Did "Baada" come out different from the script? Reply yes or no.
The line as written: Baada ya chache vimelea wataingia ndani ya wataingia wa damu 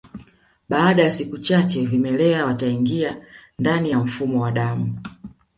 no